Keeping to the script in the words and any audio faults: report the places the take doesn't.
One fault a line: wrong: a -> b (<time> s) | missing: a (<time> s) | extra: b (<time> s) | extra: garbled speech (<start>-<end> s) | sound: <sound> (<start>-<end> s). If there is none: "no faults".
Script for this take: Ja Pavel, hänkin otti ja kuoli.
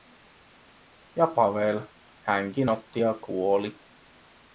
no faults